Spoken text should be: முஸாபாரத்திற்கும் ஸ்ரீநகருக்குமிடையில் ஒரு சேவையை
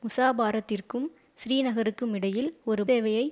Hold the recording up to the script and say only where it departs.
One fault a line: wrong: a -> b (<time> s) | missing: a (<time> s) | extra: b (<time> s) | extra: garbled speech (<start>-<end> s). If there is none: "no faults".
no faults